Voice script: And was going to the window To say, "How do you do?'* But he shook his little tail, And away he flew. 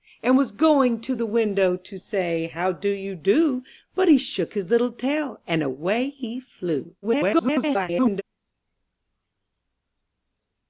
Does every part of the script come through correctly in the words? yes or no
no